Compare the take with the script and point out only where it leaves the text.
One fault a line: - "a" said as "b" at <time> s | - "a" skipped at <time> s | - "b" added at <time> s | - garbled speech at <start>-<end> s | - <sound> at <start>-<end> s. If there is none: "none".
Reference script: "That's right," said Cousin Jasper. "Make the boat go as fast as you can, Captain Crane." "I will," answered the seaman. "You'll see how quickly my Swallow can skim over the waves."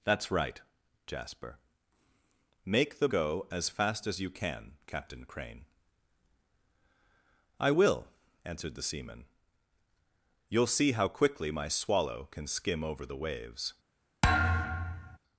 - "said Cousin" skipped at 0.6 s
- "boat" skipped at 3.1 s
- thud at 14.2-15.2 s